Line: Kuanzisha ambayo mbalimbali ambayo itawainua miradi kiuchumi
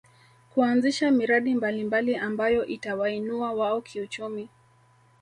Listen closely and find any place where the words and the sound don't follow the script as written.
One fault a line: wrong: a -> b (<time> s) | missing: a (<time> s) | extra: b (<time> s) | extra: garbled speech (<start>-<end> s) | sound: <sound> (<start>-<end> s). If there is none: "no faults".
wrong: ambayo -> miradi (1.1 s)
wrong: miradi -> wao (3.5 s)